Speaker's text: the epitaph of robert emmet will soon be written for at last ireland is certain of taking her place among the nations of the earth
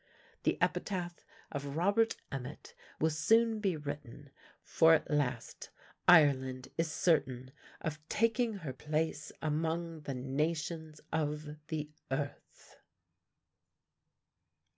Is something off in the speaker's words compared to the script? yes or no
no